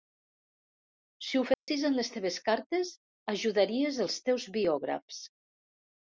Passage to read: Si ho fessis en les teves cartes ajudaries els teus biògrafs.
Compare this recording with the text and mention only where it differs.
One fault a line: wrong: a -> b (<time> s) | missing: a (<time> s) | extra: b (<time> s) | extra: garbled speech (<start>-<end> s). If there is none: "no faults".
no faults